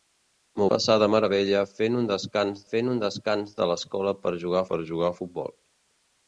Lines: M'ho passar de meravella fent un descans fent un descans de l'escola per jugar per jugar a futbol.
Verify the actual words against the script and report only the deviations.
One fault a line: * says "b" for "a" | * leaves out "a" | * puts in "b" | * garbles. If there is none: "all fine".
all fine